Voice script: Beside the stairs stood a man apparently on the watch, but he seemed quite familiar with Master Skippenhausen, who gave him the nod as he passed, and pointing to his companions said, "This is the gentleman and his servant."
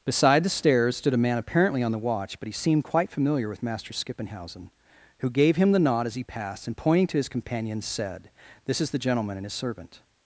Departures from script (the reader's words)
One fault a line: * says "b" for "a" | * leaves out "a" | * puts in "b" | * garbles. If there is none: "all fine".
all fine